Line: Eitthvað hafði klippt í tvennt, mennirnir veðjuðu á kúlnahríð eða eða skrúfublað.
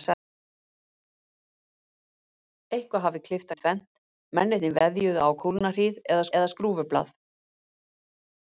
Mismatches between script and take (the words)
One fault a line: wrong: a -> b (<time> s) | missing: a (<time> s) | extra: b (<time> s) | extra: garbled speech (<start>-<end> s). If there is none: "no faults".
no faults